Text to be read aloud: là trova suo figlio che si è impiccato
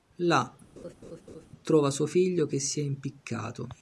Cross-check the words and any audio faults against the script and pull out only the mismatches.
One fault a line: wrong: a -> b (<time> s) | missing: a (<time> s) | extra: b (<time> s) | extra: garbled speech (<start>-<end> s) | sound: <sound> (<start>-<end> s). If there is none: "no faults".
sound: laugh (0.8-1.5 s)